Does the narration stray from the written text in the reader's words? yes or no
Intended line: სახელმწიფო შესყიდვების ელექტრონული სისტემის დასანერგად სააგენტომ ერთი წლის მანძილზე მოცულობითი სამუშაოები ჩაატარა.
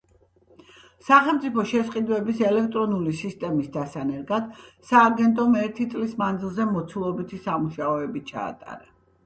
no